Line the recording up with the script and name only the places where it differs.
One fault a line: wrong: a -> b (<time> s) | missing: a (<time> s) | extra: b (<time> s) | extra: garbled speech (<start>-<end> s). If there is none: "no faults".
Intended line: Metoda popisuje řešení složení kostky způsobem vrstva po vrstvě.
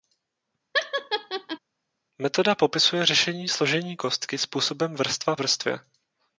missing: po (5.4 s)